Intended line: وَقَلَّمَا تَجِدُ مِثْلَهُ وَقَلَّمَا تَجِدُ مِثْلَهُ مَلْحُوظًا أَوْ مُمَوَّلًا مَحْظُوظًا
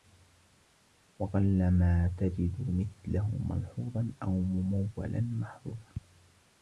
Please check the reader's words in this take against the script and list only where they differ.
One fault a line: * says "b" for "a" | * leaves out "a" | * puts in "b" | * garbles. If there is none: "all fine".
* leaves out "وَقَلَّمَا تَجِدُ مِثْلَهُ"